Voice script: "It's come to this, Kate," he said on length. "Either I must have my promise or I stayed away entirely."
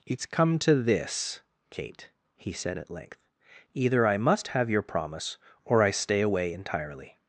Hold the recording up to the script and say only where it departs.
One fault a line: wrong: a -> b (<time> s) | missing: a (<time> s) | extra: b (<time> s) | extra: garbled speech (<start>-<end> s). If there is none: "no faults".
wrong: on -> at (2.8 s)
wrong: my -> your (4.7 s)
wrong: stayed -> stay (5.9 s)